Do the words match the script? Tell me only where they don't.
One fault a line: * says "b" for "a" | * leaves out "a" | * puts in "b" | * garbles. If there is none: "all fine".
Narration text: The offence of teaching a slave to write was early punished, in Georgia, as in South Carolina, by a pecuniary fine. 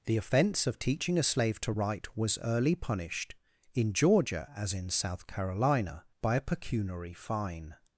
all fine